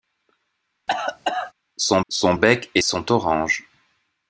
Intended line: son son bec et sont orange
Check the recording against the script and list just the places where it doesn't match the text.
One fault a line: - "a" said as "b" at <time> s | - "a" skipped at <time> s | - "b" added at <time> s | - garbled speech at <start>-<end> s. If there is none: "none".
none